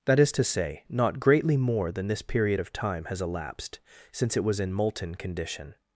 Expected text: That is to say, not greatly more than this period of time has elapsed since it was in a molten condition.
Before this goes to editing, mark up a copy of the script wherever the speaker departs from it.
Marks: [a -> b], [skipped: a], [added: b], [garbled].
That is to say, not greatly more than this period of time has elapsed since it was in [skipped: a] molten condition.